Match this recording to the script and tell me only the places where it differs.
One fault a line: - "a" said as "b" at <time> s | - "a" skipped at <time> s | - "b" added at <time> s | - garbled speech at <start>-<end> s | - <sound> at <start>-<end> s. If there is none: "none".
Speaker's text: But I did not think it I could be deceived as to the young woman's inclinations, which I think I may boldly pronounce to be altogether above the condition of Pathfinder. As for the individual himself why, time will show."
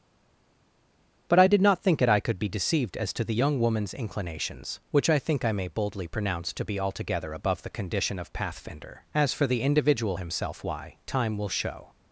none